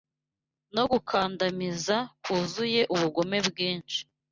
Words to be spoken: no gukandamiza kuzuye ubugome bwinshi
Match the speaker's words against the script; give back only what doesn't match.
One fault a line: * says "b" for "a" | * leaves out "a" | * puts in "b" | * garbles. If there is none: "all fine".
all fine